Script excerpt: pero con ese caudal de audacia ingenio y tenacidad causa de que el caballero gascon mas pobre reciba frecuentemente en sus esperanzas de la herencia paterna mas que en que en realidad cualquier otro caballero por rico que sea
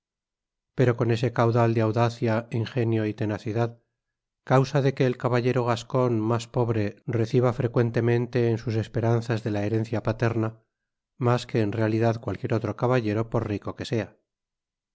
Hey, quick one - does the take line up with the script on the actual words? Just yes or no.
no